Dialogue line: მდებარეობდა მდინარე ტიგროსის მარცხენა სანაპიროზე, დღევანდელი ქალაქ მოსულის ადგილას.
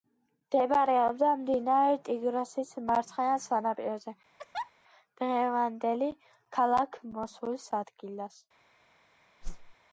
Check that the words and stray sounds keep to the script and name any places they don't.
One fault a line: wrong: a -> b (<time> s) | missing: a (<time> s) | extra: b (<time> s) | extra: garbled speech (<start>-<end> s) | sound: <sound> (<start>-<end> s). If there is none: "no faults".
sound: laugh (4.4-4.7 s)
sound: whoosh (9.4-9.8 s)